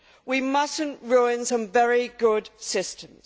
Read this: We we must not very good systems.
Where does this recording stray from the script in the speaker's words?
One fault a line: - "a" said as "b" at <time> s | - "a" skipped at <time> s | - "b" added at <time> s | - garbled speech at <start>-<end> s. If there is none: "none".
- "we" skipped at 0.4 s
- "ruin some" added at 1.1 s